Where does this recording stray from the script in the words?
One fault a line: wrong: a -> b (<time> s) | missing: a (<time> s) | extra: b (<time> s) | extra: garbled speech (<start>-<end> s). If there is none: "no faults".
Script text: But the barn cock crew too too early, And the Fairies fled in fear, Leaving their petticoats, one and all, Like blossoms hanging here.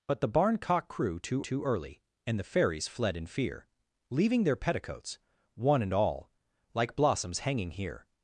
no faults